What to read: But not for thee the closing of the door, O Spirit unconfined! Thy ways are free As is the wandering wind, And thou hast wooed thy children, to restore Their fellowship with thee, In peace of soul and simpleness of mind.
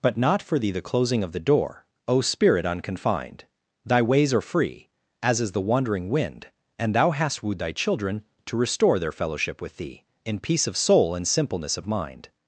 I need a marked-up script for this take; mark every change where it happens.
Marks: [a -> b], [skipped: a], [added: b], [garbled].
But not for thee the closing of the door, O Spirit unconfined! Thy ways are free As is the wandering wind, And thou hast wooed thy children, to restore Their fellowship with thee, In peace of soul and simpleness of mind.